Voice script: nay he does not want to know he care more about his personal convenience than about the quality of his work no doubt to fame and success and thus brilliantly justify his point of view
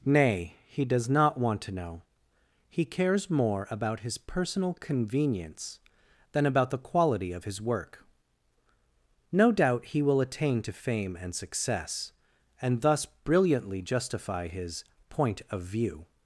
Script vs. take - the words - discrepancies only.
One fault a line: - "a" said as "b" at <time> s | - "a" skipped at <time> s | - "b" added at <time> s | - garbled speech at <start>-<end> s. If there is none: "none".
- "care" said as "cares" at 2.9 s
- "he will attain" added at 9.8 s